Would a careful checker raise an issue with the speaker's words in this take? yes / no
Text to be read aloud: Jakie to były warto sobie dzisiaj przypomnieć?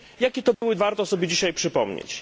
no